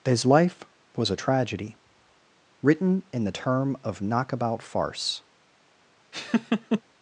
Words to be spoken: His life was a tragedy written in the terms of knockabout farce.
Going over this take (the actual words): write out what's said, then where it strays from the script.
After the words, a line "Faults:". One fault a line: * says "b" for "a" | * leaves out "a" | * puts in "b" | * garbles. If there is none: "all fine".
His life was a tragedy written in the term of knockabout farce.
Faults:
* says "term" for "terms"